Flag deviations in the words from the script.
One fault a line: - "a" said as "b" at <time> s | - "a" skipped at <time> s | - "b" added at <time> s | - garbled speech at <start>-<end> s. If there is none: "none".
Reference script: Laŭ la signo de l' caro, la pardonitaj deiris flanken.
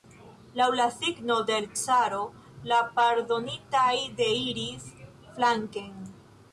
none